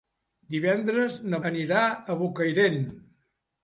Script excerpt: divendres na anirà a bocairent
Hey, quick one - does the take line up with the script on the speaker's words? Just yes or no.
yes